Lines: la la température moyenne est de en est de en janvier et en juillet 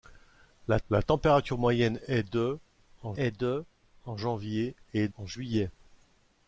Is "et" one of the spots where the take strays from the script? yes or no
no